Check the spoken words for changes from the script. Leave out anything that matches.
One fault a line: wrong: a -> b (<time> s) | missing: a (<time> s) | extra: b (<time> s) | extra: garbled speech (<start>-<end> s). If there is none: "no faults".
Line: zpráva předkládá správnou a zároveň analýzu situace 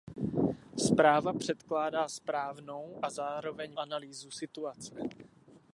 no faults